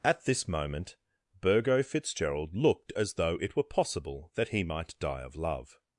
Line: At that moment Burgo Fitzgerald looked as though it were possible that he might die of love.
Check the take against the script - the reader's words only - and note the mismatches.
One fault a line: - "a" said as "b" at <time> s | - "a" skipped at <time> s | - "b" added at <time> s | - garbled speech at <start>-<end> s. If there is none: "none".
- "that" said as "this" at 0.2 s